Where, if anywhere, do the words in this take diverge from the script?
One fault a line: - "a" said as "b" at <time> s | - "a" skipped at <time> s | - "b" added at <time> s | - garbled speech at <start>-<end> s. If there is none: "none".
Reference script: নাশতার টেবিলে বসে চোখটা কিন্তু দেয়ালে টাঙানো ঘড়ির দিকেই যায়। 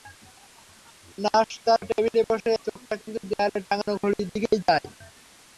none